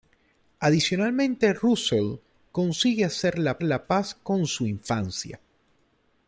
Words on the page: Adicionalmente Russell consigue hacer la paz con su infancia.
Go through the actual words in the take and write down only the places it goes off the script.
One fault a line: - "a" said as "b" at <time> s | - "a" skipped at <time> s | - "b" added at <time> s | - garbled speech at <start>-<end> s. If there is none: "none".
- "la" added at 3.6 s